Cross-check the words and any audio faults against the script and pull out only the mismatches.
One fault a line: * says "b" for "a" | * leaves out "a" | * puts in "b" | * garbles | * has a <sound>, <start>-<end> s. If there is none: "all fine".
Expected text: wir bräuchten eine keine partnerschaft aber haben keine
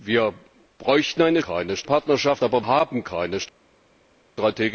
all fine